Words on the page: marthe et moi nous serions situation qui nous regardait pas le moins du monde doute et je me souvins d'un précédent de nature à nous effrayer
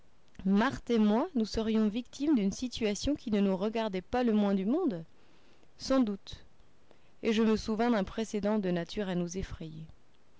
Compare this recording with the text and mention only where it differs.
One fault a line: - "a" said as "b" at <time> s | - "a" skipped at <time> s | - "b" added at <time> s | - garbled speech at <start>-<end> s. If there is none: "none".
- "victimes d'une" added at 1.9 s
- "ne" added at 3.3 s
- "sans" added at 5.8 s